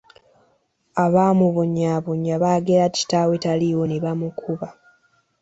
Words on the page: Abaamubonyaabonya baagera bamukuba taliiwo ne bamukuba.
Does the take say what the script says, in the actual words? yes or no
no